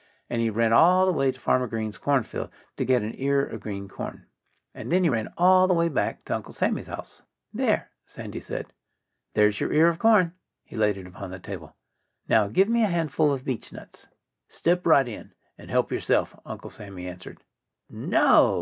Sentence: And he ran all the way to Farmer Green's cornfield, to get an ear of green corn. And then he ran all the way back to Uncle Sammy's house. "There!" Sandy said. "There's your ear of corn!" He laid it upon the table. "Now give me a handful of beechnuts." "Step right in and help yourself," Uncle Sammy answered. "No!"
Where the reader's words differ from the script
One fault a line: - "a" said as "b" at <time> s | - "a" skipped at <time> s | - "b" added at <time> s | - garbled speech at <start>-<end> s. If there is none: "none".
none